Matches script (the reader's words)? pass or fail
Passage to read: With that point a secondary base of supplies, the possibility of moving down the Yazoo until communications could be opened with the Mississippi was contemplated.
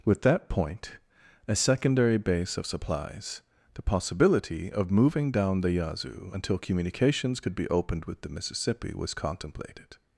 pass